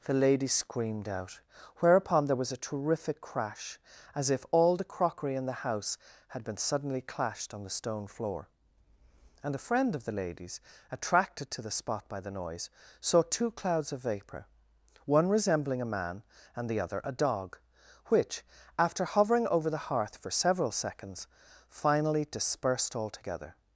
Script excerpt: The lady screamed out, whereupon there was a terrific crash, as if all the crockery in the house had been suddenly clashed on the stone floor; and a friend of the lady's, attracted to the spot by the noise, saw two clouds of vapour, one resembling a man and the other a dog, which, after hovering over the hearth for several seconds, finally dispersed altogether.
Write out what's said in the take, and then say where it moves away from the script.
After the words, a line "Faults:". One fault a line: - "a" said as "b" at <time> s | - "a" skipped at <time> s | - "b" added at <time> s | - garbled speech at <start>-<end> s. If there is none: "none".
The lady screamed out, whereupon there was a terrific crash, as if all the crockery in the house had been suddenly clashed on the stone floor; and a friend of the lady's, attracted to the spot by the noise, saw two clouds of vapour, one resembling a man and the other a dog, which, after hovering over the hearth for several seconds, finally dispersed altogether.
Faults:
none